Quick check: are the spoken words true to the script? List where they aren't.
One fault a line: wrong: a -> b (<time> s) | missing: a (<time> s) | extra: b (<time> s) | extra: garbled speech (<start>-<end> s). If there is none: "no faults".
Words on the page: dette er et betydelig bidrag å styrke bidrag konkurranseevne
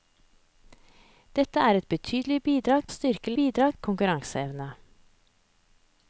no faults